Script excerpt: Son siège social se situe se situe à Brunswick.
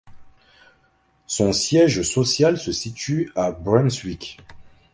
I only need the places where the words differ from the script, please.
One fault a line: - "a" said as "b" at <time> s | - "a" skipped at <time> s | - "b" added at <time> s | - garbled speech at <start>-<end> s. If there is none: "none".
- "se situe" skipped at 3.3 s